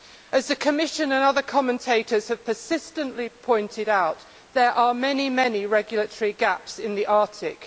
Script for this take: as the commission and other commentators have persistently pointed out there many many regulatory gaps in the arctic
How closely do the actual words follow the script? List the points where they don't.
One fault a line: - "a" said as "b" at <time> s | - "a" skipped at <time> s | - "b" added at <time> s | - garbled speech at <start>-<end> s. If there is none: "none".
- "are" added at 4.7 s